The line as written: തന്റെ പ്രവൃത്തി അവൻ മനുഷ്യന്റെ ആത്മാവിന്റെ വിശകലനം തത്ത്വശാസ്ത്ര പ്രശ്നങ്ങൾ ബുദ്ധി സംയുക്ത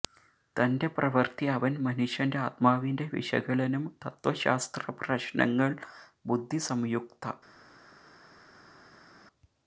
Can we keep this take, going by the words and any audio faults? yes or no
yes